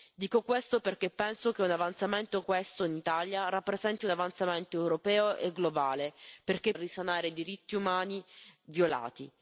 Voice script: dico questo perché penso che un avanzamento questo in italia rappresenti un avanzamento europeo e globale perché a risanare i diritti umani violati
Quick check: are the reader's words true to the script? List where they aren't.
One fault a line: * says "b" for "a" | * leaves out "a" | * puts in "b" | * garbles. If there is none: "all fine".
all fine